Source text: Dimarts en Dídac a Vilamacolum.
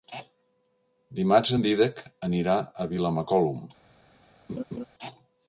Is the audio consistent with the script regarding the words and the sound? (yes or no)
no